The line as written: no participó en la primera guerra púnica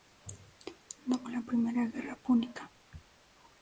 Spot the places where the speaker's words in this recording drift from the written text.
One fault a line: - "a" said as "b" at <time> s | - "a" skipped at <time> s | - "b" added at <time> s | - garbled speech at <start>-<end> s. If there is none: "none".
- "participó" skipped at 1.2 s